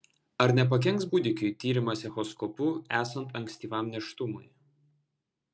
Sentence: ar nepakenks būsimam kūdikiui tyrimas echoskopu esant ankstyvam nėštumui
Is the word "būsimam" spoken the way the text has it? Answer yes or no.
no